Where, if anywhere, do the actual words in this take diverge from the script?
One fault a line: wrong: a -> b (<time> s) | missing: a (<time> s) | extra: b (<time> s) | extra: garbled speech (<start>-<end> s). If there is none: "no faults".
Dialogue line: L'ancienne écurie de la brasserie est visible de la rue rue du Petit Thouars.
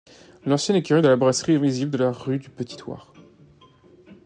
missing: rue (2.4 s)